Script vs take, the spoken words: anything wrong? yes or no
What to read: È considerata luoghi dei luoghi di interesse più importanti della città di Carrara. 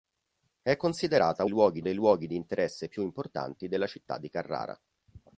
no